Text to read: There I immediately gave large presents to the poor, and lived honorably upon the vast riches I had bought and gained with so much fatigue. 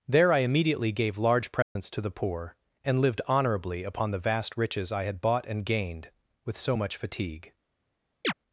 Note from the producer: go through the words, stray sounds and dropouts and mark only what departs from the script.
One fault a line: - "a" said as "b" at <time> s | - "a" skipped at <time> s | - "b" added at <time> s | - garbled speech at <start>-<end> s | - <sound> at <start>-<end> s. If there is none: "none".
- dropout at 1.6-1.8 s
- chirp at 8.2-8.3 s